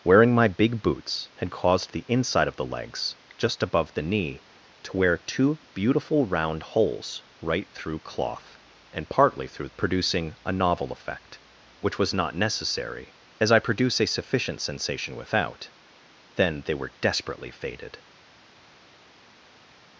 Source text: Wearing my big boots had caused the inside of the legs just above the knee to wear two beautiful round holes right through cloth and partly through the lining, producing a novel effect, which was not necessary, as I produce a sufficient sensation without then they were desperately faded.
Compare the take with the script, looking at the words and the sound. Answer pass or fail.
fail